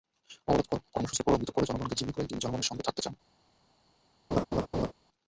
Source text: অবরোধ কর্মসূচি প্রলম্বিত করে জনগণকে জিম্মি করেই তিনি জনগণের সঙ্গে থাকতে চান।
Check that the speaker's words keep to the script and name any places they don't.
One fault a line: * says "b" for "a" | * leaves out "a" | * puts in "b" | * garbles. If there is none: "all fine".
all fine